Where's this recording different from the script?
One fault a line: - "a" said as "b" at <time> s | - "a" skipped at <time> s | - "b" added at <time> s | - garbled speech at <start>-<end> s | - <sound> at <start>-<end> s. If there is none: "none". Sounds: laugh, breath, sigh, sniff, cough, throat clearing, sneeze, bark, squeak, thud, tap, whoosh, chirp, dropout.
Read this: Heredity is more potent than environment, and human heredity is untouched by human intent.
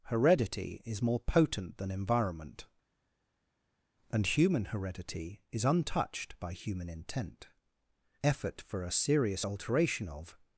- "Effort for a serious alteration of" added at 8.2 s